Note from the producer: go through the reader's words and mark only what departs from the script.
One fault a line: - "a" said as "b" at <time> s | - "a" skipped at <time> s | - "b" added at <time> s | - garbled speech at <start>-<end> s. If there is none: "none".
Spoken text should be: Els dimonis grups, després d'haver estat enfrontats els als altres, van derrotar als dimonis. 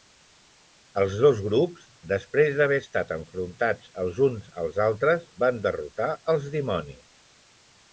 - "dimonis" said as "dos" at 1.2 s
- "uns" added at 4.3 s